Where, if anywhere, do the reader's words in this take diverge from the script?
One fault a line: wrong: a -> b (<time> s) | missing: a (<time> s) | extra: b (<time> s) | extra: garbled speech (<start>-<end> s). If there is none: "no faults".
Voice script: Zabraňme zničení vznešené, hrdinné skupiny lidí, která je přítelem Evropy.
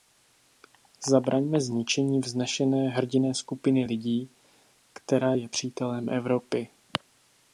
no faults